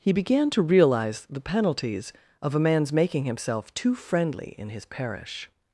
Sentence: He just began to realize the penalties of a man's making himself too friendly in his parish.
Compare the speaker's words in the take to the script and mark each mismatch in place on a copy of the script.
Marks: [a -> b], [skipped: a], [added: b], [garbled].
He [skipped: just] began to realize the penalties of a man's making himself too friendly in his parish.